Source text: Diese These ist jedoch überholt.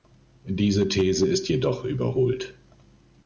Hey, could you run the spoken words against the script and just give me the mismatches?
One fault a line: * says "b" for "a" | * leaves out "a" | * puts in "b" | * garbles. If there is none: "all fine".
all fine